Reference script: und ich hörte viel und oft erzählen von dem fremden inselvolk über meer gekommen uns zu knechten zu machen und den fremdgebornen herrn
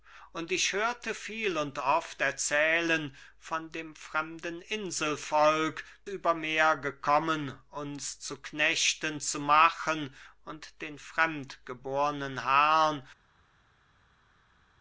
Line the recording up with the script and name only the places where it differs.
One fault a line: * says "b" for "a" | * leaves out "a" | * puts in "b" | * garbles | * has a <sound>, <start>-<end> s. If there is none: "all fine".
all fine